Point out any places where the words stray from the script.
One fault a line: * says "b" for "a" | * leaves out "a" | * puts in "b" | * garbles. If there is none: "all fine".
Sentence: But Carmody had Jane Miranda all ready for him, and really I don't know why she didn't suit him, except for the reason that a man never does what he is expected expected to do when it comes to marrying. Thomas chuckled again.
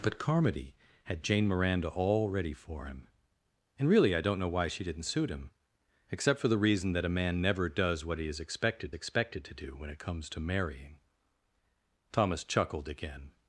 all fine